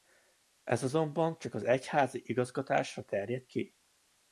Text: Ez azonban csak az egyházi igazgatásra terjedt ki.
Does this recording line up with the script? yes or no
yes